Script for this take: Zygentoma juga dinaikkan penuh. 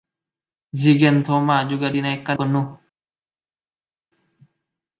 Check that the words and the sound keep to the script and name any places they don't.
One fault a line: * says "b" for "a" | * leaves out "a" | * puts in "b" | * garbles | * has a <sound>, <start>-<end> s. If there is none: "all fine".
all fine